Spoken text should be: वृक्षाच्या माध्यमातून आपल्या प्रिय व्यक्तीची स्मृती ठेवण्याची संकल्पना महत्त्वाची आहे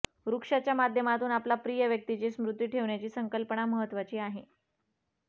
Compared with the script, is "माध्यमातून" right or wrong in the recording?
right